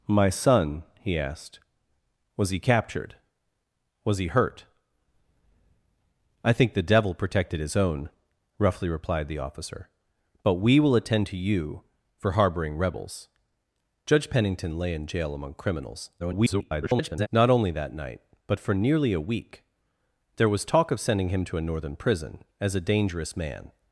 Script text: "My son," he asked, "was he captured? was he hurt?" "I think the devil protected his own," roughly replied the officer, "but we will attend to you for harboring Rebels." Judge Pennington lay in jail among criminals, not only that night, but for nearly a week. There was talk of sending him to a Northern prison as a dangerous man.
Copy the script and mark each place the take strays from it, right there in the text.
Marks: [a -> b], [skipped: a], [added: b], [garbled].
"My son," he asked, "was he captured? was he hurt?" "I think the devil protected his own," roughly replied the officer, "but we will attend to you for harboring Rebels." Judge Pennington lay in jail among criminals, [garbled] not only that night, but for nearly a week. There was talk of sending him to a Northern prison as a dangerous man.